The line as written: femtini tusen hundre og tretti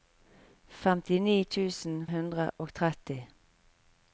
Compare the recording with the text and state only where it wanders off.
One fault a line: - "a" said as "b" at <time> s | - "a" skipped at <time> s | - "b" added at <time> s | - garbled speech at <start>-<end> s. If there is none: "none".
none